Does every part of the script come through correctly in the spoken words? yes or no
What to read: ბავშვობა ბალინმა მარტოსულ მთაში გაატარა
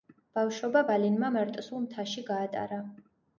yes